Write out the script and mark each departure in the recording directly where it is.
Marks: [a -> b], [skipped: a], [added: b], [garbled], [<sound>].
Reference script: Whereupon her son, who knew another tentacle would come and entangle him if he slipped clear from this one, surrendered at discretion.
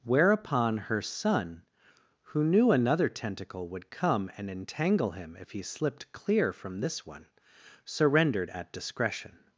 Whereupon her son, who knew another tentacle would come and entangle him if he slipped clear from this one, surrendered at discretion.